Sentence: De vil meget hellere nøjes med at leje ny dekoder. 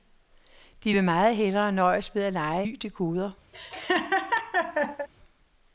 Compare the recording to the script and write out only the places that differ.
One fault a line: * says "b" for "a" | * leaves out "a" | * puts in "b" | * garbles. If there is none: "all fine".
all fine